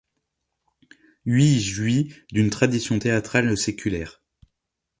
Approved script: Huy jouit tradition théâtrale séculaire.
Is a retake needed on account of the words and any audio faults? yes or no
yes